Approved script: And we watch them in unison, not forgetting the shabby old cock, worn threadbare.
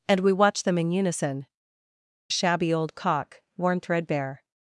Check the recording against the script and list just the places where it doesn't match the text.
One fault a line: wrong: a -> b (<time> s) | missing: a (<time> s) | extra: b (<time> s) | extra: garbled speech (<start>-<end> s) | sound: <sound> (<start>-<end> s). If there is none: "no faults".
missing: not forgetting the (1.4 s)